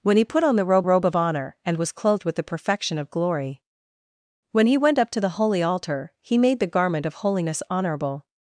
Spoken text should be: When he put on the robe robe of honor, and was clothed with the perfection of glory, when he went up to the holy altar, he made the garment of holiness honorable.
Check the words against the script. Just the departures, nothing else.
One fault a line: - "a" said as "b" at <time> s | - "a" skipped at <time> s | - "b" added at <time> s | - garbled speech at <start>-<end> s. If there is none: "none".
none